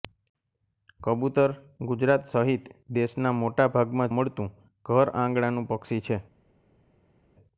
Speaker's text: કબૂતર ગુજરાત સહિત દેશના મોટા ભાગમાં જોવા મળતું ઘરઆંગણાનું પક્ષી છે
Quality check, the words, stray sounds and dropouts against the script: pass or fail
fail